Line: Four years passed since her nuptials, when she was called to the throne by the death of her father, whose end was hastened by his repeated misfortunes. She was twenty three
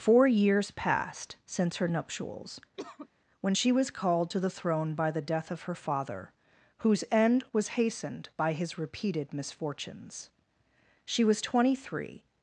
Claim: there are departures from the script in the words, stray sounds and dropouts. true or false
true